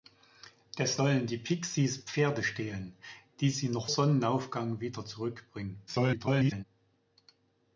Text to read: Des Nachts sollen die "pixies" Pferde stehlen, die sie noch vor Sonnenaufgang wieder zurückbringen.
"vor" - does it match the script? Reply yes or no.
no